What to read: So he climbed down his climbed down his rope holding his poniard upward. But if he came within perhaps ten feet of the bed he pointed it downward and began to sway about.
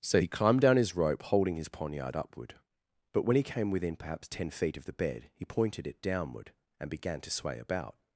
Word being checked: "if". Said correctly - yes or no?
no